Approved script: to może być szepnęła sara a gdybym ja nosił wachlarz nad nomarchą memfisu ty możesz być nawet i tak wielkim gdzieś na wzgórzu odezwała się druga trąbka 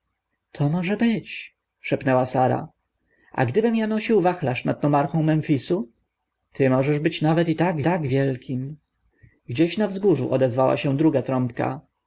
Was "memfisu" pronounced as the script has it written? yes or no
yes